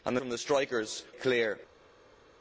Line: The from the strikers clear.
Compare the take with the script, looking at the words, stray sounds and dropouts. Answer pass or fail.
pass